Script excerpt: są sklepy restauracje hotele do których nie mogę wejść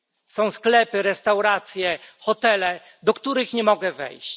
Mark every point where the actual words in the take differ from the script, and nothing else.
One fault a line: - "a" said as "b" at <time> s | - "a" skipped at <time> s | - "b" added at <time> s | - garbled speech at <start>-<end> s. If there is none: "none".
none